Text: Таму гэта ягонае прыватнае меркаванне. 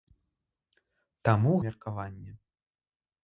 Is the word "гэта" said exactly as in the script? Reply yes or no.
no